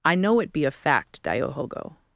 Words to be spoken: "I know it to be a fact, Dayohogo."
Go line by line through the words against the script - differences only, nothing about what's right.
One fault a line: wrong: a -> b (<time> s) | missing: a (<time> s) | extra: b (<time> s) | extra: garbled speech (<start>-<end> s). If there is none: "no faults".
missing: to (0.5 s)